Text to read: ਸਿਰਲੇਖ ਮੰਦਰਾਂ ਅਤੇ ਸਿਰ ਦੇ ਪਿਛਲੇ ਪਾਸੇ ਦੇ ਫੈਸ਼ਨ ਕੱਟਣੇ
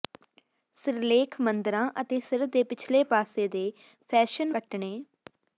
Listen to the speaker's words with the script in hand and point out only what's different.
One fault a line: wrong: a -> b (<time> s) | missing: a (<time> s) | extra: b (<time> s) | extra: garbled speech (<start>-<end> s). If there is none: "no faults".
no faults